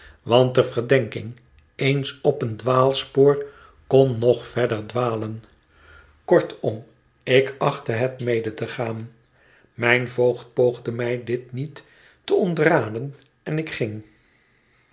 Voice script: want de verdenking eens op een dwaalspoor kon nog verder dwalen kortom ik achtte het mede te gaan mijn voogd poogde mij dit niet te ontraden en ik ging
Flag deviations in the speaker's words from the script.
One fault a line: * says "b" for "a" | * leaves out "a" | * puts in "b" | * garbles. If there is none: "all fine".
all fine